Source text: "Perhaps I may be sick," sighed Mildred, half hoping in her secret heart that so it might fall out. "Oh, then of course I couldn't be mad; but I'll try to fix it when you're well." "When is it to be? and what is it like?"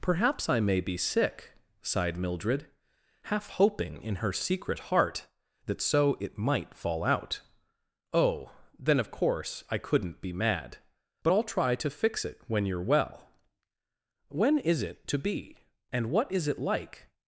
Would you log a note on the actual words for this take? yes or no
no